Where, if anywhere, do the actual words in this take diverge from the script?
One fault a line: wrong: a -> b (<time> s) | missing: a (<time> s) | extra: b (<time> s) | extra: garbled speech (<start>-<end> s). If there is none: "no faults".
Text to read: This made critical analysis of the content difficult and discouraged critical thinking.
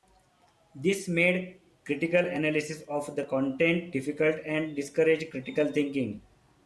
no faults